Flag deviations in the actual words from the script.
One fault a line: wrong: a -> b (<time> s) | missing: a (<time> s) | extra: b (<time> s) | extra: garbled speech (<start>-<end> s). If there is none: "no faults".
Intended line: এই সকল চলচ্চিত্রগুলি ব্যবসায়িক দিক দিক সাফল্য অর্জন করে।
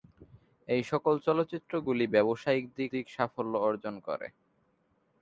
no faults